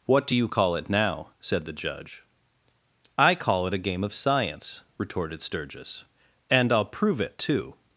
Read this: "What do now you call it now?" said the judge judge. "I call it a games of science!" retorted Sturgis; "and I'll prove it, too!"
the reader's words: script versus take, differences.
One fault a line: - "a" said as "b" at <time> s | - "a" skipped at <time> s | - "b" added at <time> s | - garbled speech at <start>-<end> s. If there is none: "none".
- "now" skipped at 0.3 s
- "judge" skipped at 2.2 s
- "games" said as "game" at 3.8 s